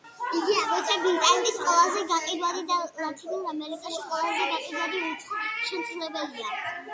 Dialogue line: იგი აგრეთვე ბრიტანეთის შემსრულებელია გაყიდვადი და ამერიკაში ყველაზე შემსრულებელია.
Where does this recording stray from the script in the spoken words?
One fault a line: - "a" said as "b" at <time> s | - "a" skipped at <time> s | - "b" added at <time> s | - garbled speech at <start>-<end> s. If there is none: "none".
- "შემსრულებელია" said as "ყველაზე" at 1.6 s
- "ლათინურ" added at 3.0 s
- "გაყიდვადი უცხო" added at 4.5 s